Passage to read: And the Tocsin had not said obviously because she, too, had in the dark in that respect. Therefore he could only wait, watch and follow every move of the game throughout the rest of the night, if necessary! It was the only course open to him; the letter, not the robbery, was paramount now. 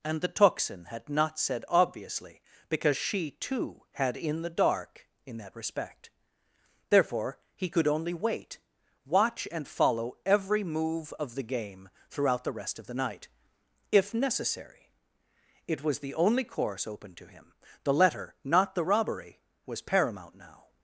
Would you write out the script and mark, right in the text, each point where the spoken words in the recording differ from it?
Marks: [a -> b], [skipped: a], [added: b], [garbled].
And the Tocsin had not said obviously because she, too, had in the dark in that respect. Therefore he could only wait, watch and follow every move of the game throughout the rest of the night, if necessary! It was the only course open to him; the letter, not the robbery, was paramount now.